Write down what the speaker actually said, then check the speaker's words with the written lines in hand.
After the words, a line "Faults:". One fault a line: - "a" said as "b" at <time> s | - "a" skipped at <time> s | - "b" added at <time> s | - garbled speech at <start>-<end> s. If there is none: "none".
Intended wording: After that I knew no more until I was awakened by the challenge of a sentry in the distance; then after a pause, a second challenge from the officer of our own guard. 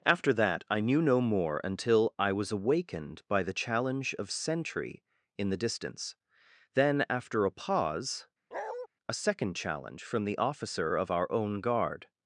After that I knew no more until I was awakened by the challenge of sentry in the distance; then after a pause, a second challenge from the officer of our own guard.
Faults:
- "a" skipped at 4.3 s